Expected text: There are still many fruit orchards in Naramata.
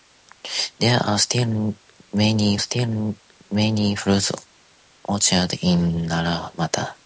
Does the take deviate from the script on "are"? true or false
false